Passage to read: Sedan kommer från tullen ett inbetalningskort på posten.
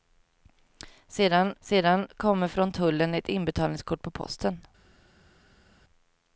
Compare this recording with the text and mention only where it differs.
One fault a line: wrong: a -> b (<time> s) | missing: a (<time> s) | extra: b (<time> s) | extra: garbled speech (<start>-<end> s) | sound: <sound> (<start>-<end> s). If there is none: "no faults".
extra: sedan (1.6 s)